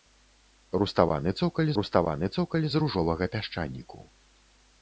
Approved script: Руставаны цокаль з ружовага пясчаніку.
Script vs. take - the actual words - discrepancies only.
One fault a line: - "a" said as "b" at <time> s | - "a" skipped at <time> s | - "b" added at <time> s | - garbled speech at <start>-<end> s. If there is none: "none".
- "руставаны цокаль" added at 1.8 s